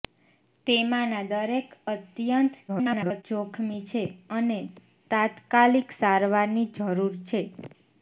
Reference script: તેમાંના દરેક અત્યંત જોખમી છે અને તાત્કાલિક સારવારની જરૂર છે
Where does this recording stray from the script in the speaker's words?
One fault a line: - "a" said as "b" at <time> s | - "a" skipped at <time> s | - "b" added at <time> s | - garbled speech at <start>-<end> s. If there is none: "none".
- garbled speech at 2.7-3.2 s